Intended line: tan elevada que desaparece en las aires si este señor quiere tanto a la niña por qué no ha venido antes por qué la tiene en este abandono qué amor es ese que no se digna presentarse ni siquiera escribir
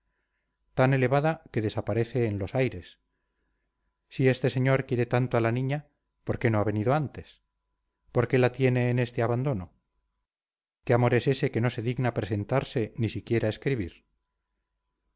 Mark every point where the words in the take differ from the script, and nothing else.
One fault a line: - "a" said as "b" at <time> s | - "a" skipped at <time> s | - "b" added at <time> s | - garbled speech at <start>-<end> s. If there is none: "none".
- "las" said as "los" at 2.4 s